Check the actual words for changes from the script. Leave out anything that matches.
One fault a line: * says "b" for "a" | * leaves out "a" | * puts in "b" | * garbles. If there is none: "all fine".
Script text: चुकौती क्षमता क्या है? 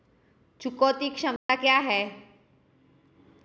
all fine